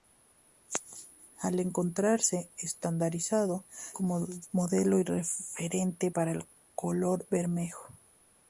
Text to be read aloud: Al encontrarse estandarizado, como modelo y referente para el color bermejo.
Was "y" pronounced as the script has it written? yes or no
yes